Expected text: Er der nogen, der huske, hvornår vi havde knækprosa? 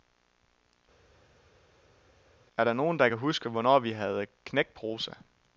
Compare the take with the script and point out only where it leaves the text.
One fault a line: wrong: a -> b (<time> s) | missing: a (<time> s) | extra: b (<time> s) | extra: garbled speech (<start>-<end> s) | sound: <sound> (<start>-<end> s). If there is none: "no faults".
extra: kan (3.1 s)